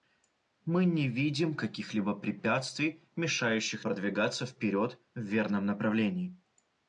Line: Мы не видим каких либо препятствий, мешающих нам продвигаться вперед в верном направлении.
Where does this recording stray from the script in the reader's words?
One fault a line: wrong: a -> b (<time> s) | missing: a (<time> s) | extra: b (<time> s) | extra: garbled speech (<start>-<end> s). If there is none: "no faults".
missing: нам (3.9 s)